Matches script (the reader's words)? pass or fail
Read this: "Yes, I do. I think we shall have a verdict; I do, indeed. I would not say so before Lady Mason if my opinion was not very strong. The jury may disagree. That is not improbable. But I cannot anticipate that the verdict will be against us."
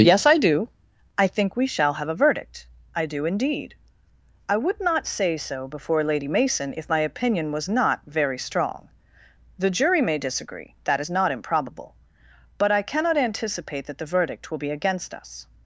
pass